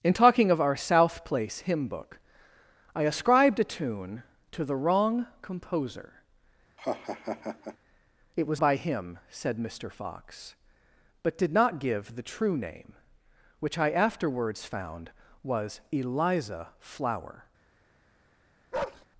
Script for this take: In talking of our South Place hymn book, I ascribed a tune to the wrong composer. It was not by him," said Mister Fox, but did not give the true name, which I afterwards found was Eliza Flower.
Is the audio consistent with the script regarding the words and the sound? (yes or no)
no